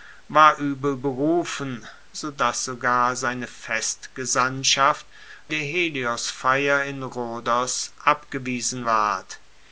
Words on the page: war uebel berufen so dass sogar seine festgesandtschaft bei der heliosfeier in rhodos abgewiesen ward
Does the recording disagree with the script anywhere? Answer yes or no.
yes